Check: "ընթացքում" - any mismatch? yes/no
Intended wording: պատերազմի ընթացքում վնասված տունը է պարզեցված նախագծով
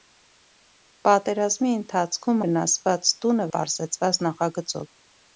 no